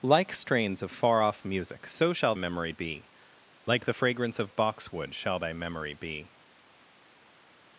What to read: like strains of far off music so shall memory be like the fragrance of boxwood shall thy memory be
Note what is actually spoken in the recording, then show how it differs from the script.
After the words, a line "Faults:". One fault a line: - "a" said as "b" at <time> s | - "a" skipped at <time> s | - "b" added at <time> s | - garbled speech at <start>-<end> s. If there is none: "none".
like strains of far off music so shall memory be like the fragrance of boxwood shall thy memory be
Faults:
none